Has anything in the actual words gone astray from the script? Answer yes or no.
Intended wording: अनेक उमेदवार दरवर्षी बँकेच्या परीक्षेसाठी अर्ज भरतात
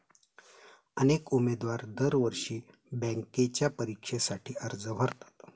no